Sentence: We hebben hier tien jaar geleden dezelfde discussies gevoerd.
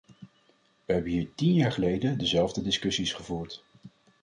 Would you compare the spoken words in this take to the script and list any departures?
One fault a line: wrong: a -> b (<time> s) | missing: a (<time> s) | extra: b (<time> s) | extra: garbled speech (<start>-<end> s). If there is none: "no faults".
no faults